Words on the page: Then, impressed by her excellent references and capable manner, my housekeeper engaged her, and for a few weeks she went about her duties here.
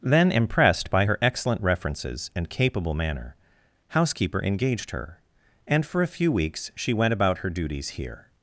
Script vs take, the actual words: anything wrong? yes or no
yes